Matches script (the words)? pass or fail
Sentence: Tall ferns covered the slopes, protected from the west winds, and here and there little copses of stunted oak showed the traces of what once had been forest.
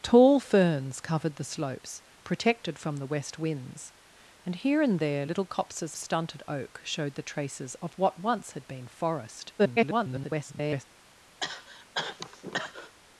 fail